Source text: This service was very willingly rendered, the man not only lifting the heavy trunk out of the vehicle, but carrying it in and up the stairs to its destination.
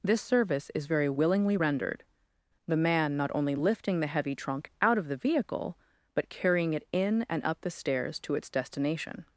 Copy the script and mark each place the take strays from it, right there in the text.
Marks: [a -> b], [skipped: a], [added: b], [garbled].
This service [was -> is] very willingly rendered, the man not only lifting the heavy trunk out of the vehicle, but carrying it in and up the stairs to its destination.